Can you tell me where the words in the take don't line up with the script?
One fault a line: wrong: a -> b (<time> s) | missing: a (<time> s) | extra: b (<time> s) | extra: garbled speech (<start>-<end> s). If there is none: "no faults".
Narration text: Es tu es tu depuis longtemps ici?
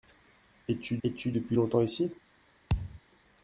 no faults